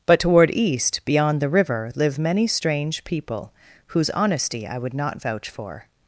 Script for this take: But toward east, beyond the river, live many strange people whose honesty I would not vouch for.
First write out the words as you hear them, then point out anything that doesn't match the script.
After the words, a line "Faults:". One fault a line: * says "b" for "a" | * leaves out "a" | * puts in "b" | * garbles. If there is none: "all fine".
But toward east, beyond the river, live many strange people whose honesty I would not vouch for.
Faults:
all fine